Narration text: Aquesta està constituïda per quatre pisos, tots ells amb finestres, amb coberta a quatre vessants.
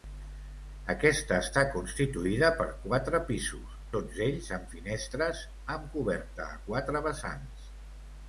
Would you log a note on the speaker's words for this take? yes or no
no